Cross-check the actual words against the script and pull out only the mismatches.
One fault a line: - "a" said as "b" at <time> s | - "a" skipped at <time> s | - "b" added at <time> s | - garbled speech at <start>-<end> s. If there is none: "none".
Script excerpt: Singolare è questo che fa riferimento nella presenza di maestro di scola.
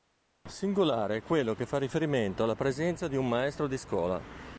- "questo" said as "quello" at 1.2 s
- "nella" said as "alla" at 2.4 s
- "un" added at 3.2 s